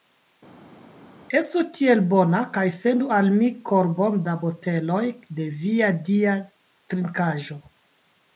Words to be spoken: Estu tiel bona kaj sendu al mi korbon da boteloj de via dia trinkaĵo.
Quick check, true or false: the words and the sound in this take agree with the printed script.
true